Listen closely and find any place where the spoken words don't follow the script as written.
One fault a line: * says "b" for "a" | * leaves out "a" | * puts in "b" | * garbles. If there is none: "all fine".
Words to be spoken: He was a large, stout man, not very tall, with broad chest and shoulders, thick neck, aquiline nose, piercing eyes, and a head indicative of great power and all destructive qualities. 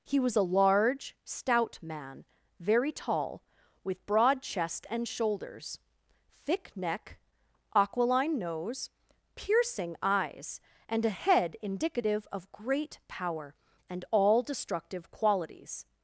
* leaves out "not"